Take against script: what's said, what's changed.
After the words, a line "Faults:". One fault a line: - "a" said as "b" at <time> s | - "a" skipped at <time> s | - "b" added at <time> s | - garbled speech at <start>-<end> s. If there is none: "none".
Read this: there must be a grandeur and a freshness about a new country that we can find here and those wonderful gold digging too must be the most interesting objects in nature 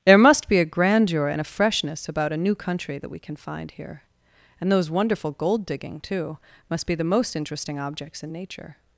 there must be a grandeur and a freshness about a new country that we can find here and those wonderful gold digging too must be the most interesting objects in nature
Faults:
none